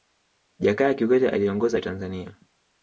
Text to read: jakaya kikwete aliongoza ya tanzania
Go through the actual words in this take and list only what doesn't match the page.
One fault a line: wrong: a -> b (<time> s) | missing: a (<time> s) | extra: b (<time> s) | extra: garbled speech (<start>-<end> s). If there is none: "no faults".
no faults